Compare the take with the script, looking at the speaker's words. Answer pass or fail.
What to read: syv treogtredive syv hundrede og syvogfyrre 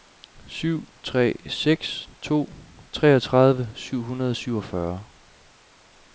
fail